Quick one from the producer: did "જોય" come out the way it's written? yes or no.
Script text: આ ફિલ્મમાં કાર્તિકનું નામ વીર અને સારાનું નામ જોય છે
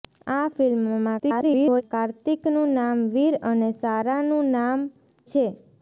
no